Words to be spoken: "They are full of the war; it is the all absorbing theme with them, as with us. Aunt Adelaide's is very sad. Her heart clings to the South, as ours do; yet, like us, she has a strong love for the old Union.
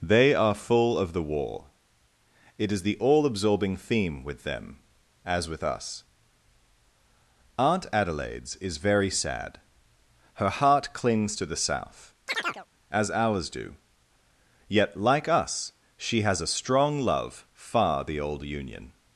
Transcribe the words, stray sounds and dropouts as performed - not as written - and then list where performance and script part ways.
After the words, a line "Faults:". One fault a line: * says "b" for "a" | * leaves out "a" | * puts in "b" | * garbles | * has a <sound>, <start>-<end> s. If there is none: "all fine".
"They are full of the war; it is the all absorbing theme with them, as with us. Aunt Adelaide's is very sad. Her heart clings to the South, as ours do; yet, like us, she has a strong love far the old Union.
Faults:
* has a chirp, 12.3-12.7 s
* says "far" for "for"